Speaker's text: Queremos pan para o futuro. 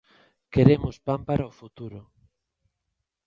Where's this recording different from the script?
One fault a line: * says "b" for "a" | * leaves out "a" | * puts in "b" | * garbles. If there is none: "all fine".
all fine